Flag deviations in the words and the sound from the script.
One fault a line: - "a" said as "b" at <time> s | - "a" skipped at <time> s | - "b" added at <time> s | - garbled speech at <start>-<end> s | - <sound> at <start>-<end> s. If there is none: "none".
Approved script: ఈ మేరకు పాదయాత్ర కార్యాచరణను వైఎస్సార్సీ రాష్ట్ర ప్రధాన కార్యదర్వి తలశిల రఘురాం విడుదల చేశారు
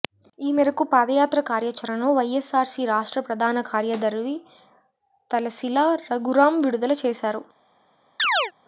- chirp at 8.2-8.5 s